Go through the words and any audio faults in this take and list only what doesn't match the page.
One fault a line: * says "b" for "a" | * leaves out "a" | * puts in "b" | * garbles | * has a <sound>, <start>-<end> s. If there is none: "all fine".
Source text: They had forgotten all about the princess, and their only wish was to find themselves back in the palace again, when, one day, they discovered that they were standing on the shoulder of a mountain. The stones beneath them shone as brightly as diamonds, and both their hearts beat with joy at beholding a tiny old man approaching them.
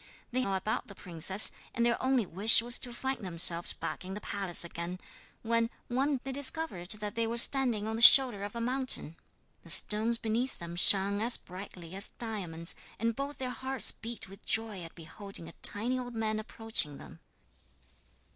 * leaves out "had forgotten"
* leaves out "day"